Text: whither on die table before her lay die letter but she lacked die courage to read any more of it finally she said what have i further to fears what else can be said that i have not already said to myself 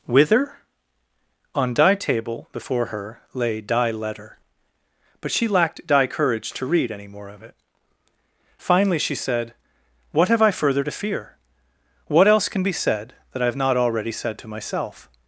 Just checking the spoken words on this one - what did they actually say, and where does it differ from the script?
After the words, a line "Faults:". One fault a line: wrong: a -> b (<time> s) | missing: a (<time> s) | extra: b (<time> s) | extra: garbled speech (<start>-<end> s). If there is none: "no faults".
whither on die table before her lay die letter but she lacked die courage to read any more of it finally she said what have i further to fear what else can be said that i have not already said to myself
Faults:
wrong: fears -> fear (10.9 s)